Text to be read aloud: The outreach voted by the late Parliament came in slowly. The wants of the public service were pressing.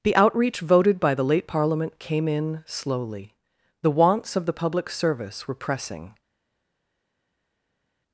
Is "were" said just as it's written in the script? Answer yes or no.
yes